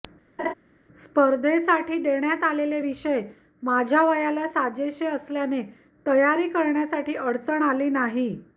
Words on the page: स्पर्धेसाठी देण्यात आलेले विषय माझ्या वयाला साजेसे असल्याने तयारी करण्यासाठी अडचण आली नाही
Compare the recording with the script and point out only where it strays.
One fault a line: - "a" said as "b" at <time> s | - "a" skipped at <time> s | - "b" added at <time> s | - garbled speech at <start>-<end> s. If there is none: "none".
none